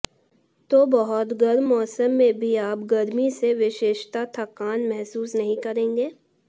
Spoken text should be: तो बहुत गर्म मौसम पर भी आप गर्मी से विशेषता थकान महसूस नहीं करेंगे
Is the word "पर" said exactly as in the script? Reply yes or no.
no